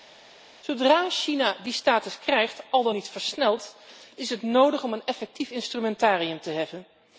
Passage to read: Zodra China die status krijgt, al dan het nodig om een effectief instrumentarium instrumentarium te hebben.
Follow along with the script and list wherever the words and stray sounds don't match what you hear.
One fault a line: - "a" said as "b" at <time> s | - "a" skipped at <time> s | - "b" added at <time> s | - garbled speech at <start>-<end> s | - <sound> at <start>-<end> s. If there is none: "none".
- "niet versneld is" added at 2.9 s
- "instrumentarium" skipped at 6.4 s